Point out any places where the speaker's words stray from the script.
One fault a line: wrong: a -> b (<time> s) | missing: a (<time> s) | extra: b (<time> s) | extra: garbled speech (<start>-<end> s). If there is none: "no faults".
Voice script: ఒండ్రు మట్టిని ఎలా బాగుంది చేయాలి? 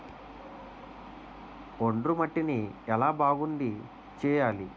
no faults